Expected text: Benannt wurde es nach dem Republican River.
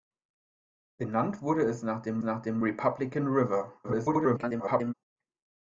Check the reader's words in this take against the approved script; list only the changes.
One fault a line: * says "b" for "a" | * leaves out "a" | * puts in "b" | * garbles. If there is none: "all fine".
* puts in "nach dem"
* garbles